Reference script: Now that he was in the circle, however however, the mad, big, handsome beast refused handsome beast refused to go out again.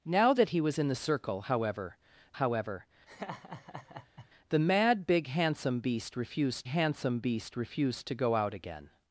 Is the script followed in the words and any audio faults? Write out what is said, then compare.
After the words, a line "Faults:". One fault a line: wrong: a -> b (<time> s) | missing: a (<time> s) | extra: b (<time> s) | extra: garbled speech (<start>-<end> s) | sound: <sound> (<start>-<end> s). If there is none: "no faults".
Now that he was in the circle, however however, the mad, big, handsome beast refused handsome beast refused to go out again.
Faults:
sound: laugh (3.1-4.3 s)